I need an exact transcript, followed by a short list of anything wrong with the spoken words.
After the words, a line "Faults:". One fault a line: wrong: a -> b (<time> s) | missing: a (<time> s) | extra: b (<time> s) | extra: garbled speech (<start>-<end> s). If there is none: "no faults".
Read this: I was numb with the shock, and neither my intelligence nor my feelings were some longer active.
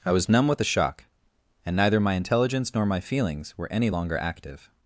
I was numb with the shock, and neither my intelligence nor my feelings were any longer active.
Faults:
wrong: some -> any (3.7 s)